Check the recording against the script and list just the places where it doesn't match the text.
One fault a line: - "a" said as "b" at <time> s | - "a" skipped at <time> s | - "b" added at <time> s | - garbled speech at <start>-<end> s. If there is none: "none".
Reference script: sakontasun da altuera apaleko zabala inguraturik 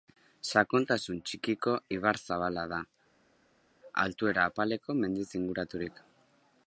- "txikiko ibar zabala" added at 1.3 s
- "zabala" said as "mendiz" at 5.0 s